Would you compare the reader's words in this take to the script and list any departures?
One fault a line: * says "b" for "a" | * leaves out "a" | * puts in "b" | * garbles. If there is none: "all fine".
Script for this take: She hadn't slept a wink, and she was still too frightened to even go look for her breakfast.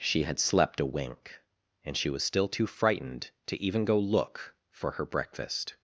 * says "had" for "hadn't"